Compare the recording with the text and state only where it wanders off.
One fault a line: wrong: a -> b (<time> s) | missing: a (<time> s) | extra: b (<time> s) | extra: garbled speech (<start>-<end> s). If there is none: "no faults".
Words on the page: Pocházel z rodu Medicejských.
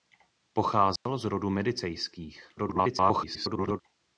extra: garbled speech (2.6-3.8 s)